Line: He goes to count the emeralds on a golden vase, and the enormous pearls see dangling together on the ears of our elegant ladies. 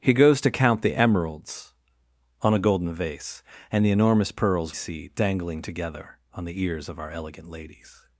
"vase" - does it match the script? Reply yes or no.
yes